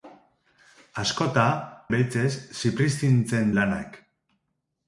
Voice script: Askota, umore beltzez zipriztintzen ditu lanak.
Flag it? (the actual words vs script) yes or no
yes